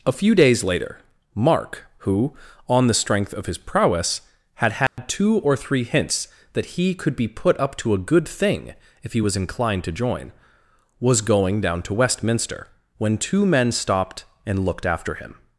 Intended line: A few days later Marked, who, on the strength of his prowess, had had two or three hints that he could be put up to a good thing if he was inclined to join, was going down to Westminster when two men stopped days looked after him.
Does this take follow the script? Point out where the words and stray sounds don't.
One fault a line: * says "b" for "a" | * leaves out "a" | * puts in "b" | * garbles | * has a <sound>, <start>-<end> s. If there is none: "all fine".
* says "Mark" for "Marked"
* has a dropout, 4.9-5.0 s
* says "and" for "days"